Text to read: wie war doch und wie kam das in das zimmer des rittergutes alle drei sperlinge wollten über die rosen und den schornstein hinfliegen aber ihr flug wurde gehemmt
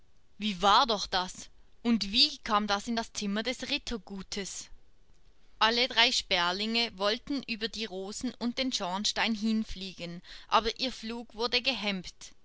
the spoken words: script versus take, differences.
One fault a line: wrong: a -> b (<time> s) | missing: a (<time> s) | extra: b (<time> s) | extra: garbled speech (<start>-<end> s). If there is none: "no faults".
extra: das (1.1 s)